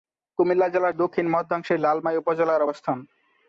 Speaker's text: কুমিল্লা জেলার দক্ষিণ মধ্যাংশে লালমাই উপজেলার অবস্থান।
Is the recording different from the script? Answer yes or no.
no